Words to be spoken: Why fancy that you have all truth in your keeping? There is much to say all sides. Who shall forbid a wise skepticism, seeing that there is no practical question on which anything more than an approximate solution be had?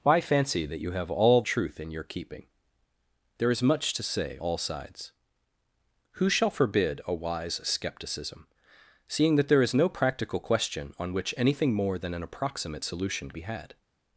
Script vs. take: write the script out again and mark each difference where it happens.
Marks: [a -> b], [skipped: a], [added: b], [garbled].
Why fancy that you have all truth in your keeping? There is much to say all sides. Who shall forbid a wise skepticism, seeing that there is no practical question on which anything more than an approximate solution be had?